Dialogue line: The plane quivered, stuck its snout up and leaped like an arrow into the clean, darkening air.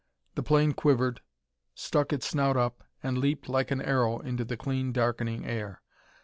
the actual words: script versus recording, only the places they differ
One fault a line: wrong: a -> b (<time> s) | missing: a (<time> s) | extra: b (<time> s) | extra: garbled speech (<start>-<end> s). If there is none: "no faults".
no faults